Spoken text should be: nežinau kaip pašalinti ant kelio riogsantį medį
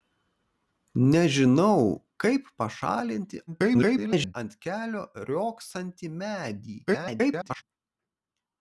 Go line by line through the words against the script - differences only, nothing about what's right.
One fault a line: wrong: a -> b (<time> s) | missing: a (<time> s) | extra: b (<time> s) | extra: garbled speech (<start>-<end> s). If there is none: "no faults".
extra: garbled speech (3.5-4.3 s)
extra: garbled speech (6.9-7.6 s)